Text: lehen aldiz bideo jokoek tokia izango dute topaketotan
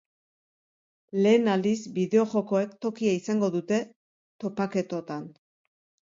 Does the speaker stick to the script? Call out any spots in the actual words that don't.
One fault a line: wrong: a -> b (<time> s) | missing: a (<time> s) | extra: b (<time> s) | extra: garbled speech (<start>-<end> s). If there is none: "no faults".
no faults